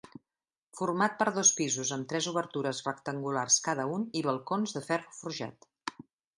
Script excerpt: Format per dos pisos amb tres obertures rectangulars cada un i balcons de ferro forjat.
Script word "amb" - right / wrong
right